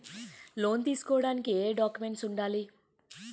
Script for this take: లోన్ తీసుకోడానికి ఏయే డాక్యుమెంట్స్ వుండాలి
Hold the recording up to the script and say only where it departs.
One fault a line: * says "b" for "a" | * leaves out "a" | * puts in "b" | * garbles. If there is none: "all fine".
all fine